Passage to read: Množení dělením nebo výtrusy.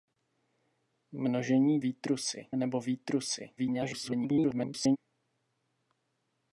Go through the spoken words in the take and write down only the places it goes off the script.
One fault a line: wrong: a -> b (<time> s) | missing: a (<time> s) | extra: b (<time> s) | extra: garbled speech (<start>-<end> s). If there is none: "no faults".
wrong: dělením -> výtrusy (1.8 s)
extra: garbled speech (3.6-5.0 s)